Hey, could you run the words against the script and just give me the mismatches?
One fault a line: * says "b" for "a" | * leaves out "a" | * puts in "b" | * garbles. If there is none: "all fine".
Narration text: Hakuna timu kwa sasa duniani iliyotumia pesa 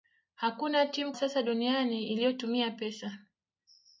* leaves out "kwa"